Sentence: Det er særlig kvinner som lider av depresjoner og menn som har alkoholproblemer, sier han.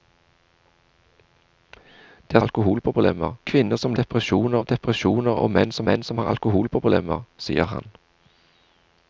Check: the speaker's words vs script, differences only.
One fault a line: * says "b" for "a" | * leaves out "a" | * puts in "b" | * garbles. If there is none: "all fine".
* says "alkoholproblemer" for "særlig"
* says "depresjoner" for "lider"
* puts in "menn som"